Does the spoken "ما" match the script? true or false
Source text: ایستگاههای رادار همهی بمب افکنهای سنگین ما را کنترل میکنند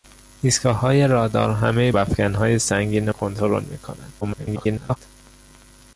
false